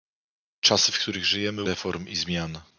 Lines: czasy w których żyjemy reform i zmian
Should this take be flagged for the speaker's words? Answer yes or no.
no